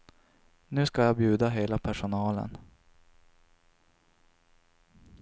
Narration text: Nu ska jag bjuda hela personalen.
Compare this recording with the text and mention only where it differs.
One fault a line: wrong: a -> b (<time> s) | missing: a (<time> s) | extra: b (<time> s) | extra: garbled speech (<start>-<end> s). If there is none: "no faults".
no faults